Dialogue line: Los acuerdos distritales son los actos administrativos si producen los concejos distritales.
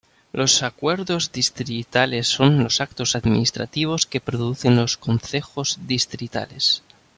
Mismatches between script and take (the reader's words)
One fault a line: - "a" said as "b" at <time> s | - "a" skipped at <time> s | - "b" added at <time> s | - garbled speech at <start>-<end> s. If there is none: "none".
- "si" said as "que" at 4.1 s